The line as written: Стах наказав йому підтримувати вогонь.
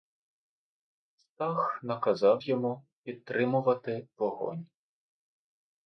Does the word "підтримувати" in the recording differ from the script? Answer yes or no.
no